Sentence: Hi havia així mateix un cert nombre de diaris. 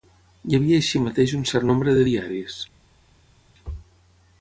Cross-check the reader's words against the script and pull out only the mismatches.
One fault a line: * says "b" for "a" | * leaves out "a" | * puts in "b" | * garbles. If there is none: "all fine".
all fine